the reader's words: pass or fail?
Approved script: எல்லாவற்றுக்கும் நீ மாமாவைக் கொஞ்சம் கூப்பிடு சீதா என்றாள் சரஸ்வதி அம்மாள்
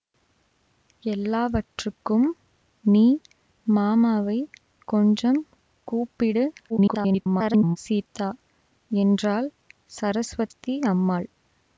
fail